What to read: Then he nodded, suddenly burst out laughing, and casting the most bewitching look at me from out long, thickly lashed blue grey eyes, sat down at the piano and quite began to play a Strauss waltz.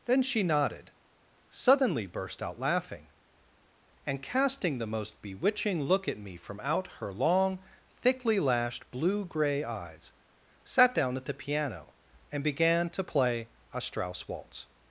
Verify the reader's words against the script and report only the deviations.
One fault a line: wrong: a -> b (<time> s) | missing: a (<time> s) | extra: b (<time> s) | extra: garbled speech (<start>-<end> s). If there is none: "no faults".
wrong: he -> she (0.2 s)
extra: her (6.9 s)
missing: quite (12.4 s)